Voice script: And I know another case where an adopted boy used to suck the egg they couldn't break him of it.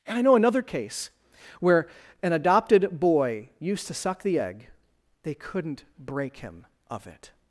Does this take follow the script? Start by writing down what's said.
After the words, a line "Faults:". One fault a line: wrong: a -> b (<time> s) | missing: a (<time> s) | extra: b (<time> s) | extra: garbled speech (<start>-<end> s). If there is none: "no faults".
And I know another case where an adopted boy used to suck the egg they couldn't break him of it.
Faults:
no faults